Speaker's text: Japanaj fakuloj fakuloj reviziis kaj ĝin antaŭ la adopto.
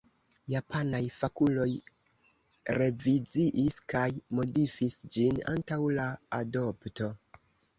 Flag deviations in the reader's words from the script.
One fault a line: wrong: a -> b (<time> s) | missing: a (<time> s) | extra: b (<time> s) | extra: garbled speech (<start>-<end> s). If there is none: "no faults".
missing: fakuloj (1.7 s)
extra: modifis (4.4 s)